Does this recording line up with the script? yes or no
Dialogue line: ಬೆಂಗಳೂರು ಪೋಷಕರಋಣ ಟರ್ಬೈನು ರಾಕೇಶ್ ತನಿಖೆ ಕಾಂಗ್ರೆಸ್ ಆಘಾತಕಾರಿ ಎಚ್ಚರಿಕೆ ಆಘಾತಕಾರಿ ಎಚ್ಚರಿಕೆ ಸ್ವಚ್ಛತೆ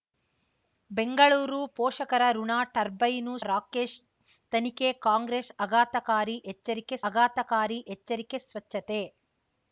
yes